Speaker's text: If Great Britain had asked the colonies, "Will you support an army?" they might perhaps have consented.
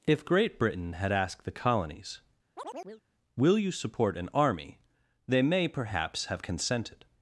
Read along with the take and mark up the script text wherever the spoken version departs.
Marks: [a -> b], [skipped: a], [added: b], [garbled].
If Great Britain had asked the colonies, "Will you support an army?" they [might -> may] perhaps have consented.